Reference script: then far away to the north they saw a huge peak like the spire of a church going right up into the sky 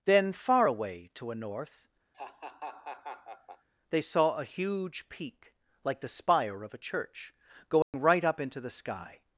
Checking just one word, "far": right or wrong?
right